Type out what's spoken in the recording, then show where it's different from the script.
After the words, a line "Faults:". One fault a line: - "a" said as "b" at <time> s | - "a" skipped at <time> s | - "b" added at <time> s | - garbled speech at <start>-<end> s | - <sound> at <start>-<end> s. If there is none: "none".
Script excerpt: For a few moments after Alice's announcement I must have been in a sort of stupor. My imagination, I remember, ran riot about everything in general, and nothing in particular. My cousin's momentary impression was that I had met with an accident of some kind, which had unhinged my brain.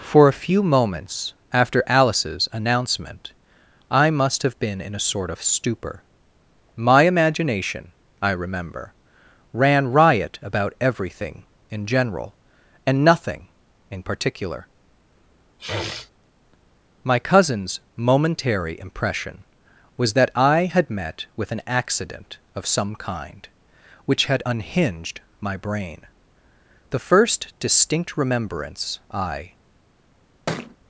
For a few moments after Alice's announcement I must have been in a sort of stupor. My imagination, I remember, ran riot about everything in general, and nothing in particular. My cousin's momentary impression was that I had met with an accident of some kind, which had unhinged my brain. The first distinct remembrance I
Faults:
- sniff at 15.6-16.1 s
- "The first distinct remembrance I" added at 26.9 s
- thud at 30.5-30.8 s